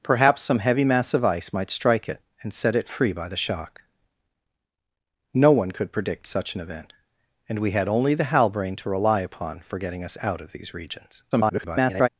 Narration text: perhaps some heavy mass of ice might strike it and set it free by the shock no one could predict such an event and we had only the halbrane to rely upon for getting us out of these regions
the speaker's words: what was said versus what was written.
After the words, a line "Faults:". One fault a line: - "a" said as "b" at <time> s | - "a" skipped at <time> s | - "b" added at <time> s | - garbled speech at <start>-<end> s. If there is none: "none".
perhaps some heavy mass of ice might strike it and set it free by the shock no one could predict such an event and we had only the halbrane to rely upon for getting us out of these regions [garbled]
Faults:
- garbled speech at 11.3-12.1 s